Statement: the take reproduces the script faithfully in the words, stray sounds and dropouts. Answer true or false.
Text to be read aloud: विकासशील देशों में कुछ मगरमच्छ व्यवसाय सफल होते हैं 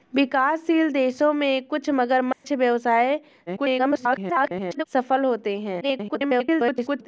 false